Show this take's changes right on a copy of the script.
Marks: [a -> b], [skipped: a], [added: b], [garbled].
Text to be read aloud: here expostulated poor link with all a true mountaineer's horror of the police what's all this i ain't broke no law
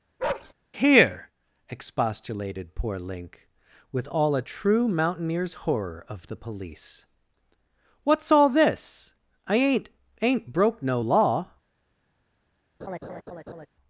here expostulated poor link with all a true mountaineer's horror of the police what's all this i ain't [added: ain't] broke no law